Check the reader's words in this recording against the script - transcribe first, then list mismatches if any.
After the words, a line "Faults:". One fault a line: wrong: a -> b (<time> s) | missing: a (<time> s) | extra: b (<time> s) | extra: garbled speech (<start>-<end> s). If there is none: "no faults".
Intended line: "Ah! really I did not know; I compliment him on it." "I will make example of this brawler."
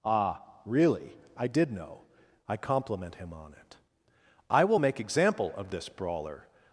"Ah! really I did know; I compliment him on it." "I will make example of this brawler."
Faults:
missing: not (1.7 s)